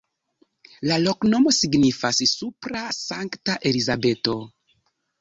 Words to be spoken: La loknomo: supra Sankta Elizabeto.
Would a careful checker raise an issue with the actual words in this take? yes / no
yes